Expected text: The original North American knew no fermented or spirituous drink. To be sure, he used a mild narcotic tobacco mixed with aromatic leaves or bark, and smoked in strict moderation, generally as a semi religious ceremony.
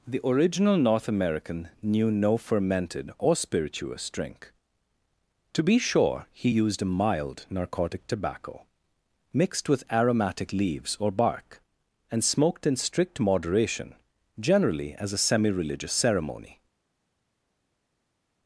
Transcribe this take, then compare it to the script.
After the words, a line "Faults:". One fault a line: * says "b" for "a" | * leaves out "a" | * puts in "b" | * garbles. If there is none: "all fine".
The original North American knew no fermented or spirituous drink. To be sure, he used a mild narcotic tobacco mixed with aromatic leaves or bark, and smoked in strict moderation, generally as a semi religious ceremony.
Faults:
all fine